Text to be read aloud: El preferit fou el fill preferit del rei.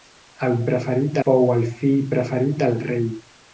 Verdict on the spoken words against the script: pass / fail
pass